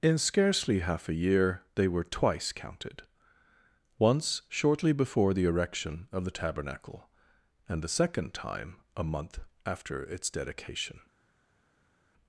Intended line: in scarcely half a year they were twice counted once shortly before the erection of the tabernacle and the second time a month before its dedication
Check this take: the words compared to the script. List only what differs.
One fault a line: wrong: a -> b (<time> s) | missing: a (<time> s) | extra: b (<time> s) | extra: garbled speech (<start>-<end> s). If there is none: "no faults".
wrong: before -> after (9.6 s)